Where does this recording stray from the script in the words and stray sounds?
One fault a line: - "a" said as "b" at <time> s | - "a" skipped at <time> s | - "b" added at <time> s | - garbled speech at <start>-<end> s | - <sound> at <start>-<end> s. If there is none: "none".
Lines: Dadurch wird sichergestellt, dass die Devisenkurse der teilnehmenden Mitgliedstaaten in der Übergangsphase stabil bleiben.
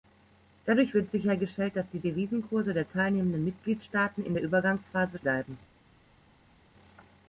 - "stabil" skipped at 5.2 s